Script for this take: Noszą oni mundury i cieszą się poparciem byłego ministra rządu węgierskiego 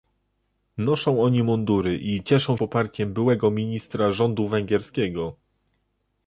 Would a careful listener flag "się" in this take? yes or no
yes